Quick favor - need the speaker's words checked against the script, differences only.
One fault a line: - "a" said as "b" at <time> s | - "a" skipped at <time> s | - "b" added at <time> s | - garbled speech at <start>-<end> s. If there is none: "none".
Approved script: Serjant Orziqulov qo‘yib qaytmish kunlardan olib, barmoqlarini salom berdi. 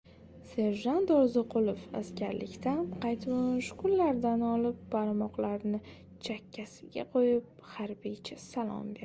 - "qo‘yib" said as "askarlikdan" at 2.0 s
- "chakkasiga qo‘yib harbiycha" added at 6.3 s